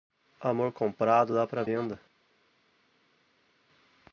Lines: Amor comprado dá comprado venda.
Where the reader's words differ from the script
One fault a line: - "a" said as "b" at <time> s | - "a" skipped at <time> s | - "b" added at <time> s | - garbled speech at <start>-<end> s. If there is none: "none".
- "comprado" said as "para" at 1.5 s